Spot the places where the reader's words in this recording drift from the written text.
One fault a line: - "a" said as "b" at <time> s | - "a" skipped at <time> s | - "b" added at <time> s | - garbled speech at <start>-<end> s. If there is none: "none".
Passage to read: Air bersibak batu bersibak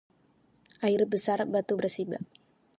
- "bersibak" said as "besar" at 1.1 s